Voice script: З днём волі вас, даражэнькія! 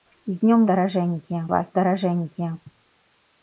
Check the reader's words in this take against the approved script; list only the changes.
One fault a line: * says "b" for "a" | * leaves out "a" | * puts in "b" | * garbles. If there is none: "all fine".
* says "даражэнькія" for "волі"